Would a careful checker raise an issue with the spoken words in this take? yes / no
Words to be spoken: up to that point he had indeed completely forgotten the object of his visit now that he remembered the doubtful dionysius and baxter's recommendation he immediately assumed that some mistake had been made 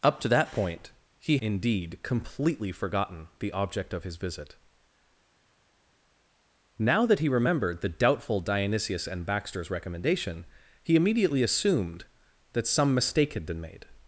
yes